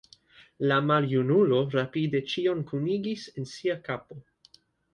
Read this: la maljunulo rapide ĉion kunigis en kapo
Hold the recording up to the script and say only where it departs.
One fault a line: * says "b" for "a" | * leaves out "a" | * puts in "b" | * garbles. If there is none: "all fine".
* puts in "sia"